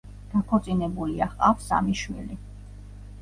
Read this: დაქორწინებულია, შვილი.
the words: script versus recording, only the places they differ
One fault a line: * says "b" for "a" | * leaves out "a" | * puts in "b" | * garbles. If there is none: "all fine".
* puts in "ჰყავს სამი"